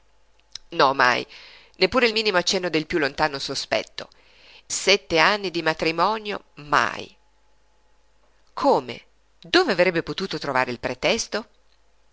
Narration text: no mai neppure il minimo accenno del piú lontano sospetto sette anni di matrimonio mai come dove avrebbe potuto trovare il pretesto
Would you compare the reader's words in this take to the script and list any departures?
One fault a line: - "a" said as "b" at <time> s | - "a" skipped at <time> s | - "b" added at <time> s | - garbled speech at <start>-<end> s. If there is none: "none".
none